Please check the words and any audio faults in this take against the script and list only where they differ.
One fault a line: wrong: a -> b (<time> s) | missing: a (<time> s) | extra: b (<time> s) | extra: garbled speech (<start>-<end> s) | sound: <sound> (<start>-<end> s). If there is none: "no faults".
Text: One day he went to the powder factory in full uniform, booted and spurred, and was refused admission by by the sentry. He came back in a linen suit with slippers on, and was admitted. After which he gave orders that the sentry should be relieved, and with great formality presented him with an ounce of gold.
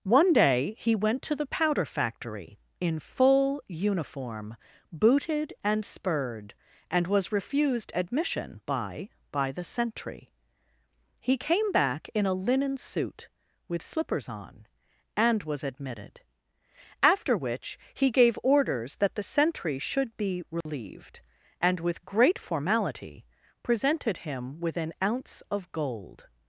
sound: dropout (20.6-20.7 s)